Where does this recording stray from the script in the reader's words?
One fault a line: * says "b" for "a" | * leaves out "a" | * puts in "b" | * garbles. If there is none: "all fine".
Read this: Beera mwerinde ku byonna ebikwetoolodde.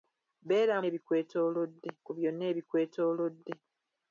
* says "ebikwetoolodde" for "mwerinde"